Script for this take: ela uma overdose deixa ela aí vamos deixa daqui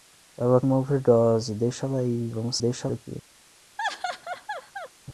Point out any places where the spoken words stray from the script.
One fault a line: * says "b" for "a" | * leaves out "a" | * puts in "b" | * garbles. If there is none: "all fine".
all fine